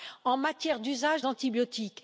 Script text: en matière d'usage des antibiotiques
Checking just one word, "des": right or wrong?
wrong